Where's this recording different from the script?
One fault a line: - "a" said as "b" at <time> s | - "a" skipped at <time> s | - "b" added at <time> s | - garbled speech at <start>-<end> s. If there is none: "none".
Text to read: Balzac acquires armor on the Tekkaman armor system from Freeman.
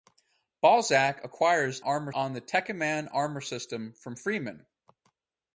none